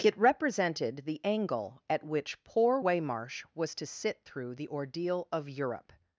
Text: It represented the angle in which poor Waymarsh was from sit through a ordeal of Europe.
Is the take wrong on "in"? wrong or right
wrong